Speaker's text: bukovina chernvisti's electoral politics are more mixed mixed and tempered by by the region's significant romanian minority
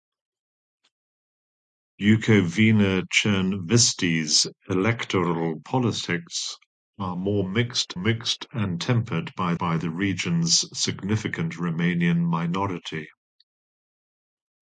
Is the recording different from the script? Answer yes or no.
no